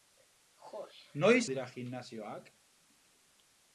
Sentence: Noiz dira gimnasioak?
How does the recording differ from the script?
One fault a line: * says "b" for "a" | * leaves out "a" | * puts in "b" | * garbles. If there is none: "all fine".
all fine